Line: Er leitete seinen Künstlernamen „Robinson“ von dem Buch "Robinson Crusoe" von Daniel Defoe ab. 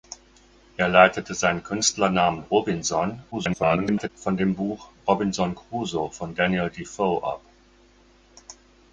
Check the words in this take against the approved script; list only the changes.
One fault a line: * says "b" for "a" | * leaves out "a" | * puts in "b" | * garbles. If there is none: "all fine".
* garbles